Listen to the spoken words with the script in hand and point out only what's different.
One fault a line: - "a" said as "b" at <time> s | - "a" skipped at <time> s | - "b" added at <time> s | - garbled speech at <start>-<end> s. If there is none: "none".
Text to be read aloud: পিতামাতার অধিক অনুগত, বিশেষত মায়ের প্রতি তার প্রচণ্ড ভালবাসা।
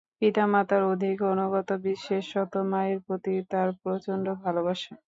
none